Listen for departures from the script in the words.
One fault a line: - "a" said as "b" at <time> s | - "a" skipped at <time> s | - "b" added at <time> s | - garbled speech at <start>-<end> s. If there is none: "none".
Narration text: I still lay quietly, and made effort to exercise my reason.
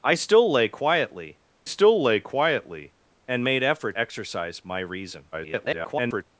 - "still lay quietly" added at 1.6 s
- "to" skipped at 4.0 s
- garbled speech at 5.3-6.2 s